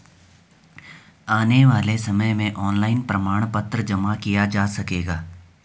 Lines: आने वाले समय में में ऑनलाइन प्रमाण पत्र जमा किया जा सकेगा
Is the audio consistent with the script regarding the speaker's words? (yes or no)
no